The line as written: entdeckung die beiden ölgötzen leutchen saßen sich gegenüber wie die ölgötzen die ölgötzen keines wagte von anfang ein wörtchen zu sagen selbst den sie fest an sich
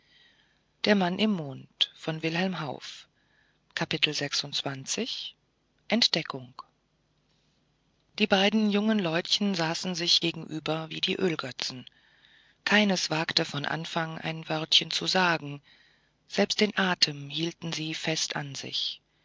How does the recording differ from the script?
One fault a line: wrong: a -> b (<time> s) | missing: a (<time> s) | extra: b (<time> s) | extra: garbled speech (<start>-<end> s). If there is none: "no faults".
wrong: ölgötzen -> jungen (8.7 s)
missing: die ölgötzen (11.9 s)
extra: atem hielten (16.8 s)